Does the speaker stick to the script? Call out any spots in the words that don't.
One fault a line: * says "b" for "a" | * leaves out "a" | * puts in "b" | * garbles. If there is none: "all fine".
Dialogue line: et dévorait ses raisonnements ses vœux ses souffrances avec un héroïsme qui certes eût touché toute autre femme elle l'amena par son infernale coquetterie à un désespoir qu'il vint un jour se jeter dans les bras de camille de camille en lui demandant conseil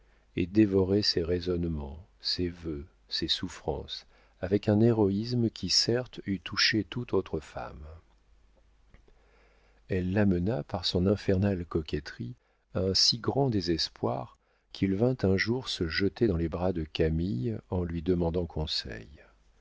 * puts in "si grand"
* leaves out "de camille"